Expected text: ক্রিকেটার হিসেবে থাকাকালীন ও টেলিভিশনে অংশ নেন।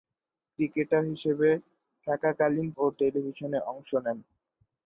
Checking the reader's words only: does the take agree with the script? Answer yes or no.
yes